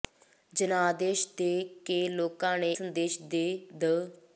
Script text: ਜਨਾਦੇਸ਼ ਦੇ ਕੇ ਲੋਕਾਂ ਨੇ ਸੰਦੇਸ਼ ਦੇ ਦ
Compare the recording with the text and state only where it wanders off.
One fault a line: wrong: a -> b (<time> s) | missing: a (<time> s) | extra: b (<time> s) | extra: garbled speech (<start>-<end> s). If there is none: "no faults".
no faults